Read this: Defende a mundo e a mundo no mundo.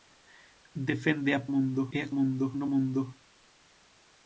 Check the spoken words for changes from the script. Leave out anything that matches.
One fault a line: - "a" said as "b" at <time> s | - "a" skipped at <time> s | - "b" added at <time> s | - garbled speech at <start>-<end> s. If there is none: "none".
none